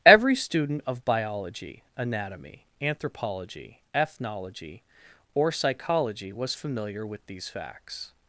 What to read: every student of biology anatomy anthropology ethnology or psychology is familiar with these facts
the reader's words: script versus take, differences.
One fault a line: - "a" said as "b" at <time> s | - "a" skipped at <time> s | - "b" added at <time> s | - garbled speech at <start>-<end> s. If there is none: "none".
- "is" said as "was" at 6.3 s